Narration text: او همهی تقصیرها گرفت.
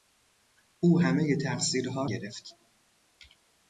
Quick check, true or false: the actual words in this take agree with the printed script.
true